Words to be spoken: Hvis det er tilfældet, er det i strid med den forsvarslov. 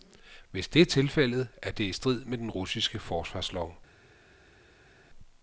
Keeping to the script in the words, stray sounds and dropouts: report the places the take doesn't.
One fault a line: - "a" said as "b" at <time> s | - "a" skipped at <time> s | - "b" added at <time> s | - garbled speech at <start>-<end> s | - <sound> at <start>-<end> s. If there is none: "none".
- "russiske" added at 2.5 s